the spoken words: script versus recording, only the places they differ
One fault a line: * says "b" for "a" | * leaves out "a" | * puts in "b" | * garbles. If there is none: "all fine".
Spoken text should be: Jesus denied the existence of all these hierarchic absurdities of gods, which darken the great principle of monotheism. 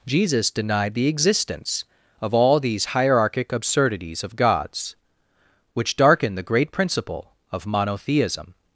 all fine